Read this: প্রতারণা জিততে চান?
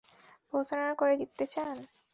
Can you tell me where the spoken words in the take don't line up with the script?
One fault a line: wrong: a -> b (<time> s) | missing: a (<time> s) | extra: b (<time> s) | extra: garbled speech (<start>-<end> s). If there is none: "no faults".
extra: করে (1.0 s)